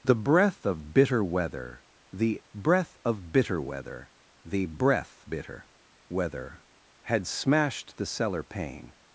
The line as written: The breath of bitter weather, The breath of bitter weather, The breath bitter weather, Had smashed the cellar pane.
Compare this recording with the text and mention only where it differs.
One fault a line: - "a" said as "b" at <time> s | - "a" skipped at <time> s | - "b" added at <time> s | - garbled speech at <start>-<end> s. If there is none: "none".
none